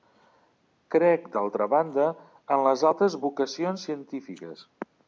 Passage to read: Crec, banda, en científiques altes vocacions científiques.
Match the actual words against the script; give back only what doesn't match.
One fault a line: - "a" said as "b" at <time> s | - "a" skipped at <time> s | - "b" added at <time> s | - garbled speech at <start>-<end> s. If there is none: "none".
- "d'altra" added at 1.4 s
- "científiques" said as "les" at 2.7 s